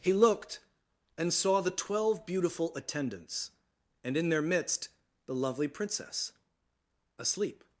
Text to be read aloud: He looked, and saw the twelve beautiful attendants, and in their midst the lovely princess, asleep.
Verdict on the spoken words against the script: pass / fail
pass